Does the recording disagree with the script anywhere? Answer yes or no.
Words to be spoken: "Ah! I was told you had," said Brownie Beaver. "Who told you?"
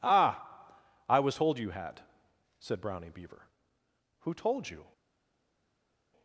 no